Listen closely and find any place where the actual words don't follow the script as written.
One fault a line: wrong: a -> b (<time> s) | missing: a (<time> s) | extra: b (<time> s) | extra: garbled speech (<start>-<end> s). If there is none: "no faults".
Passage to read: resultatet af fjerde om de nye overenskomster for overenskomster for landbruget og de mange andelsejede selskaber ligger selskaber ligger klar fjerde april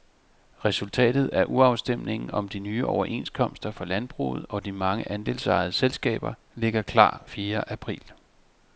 wrong: fjerde -> urafstemningen (1.5 s)
missing: overenskomster for (3.9 s)
missing: selskaber ligger (6.8 s)